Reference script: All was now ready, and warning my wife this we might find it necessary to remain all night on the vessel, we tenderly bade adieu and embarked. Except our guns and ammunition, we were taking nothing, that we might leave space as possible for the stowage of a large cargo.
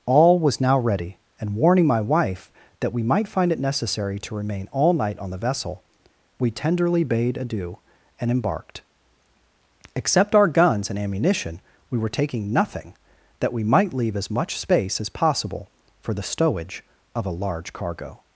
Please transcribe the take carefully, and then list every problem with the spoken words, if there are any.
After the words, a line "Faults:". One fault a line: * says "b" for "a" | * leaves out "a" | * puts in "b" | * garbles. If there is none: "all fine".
All was now ready, and warning my wife that we might find it necessary to remain all night on the vessel, we tenderly bade adieu and embarked. Except our guns and ammunition, we were taking nothing, that we might leave as much space as possible for the stowage of a large cargo.
Faults:
* says "that" for "this"
* puts in "as much"